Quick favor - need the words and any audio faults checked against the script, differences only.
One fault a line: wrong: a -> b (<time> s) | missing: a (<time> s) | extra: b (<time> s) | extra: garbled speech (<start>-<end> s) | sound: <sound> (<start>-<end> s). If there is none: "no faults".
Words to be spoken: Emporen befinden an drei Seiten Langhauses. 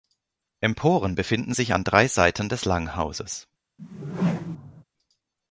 extra: sich (1.5 s)
extra: des (2.5 s)
sound: whoosh (3.8-4.8 s)